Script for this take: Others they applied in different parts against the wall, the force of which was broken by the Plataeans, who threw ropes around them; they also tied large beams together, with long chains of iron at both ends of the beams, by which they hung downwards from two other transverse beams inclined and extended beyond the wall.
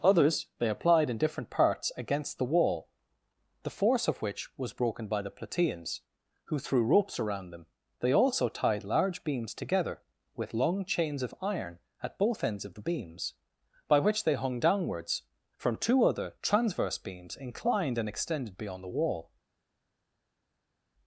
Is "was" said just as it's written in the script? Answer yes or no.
yes